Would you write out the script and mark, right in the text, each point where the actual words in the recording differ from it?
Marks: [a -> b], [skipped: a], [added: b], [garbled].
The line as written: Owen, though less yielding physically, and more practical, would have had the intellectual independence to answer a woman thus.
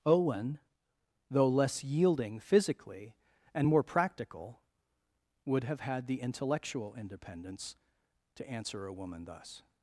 Owen, though less yielding physically, and more practical, would have had the intellectual independence to answer a woman thus.